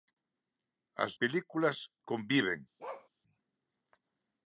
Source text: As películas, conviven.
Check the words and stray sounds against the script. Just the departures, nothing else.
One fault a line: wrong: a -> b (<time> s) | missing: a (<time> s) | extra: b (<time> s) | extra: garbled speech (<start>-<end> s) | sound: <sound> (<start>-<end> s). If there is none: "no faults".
sound: bark (2.8-3.1 s)